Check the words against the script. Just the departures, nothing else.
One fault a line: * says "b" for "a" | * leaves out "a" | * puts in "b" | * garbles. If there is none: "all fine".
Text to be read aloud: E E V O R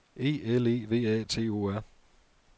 * puts in "L"
* puts in "A T"